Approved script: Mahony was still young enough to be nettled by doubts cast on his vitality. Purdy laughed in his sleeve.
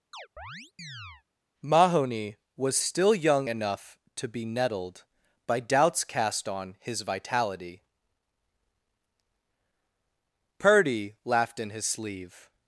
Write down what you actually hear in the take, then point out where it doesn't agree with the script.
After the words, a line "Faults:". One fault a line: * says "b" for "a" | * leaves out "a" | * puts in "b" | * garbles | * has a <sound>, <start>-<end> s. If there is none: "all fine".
Mahony was still young enough to be nettled by doubts cast on his vitality. Purdy laughed in his sleeve.
Faults:
* has a chirp, 0.1-1.2 s